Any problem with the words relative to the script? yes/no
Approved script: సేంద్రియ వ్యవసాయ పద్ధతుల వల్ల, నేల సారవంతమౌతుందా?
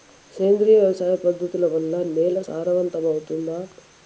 no